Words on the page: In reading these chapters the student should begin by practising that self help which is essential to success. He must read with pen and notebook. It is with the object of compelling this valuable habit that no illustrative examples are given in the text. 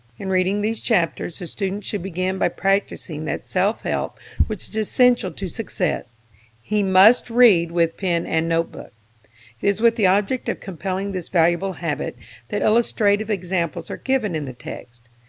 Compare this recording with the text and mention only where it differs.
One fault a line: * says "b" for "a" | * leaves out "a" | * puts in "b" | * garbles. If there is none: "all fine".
* leaves out "no"